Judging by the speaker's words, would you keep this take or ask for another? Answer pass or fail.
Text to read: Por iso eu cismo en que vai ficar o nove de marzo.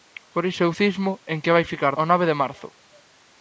pass